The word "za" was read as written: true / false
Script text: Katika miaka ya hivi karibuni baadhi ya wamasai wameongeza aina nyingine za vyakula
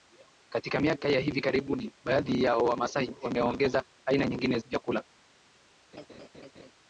false